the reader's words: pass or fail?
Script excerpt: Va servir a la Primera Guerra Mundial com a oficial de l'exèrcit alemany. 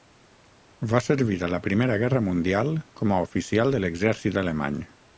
pass